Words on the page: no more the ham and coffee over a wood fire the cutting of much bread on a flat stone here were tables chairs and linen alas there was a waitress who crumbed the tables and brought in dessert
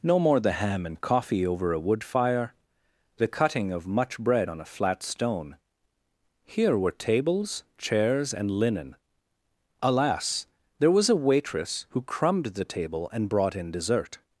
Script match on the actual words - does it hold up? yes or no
no